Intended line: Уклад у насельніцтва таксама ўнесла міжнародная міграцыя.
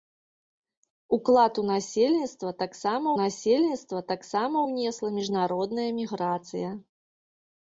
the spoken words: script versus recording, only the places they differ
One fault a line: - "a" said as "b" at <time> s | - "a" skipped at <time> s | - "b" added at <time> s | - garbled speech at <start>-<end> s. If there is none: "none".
- "насельніцтва таксама" added at 3.2 s